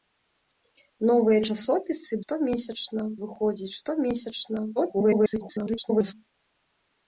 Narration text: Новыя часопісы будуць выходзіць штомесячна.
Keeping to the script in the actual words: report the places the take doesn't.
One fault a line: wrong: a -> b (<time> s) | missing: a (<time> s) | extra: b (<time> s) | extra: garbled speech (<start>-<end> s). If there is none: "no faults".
wrong: будуць -> штомесячна (2.2 s)
extra: garbled speech (4.8-6.1 s)